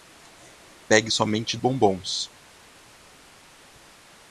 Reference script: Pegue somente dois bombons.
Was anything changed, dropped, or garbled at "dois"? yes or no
yes